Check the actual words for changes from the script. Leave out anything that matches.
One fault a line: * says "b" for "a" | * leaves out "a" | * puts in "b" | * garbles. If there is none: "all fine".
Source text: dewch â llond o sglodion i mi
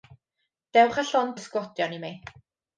all fine